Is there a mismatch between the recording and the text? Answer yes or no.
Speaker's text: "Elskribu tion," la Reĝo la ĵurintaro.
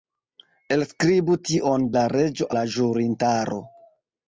no